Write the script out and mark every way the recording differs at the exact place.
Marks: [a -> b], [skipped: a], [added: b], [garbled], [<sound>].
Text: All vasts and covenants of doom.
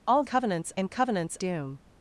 All [vasts -> covenants] and covenants [skipped: of] doom.